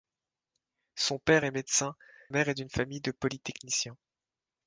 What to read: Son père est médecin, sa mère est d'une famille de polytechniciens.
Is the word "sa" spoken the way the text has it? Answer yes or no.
no